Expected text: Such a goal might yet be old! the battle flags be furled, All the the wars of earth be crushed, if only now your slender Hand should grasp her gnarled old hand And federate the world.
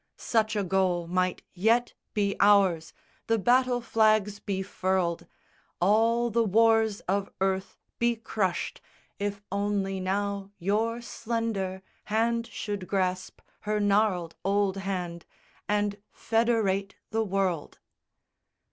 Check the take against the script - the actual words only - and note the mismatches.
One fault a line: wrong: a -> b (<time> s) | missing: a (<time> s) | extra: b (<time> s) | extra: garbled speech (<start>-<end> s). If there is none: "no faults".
wrong: old -> ours (2.4 s)
missing: the (6.4 s)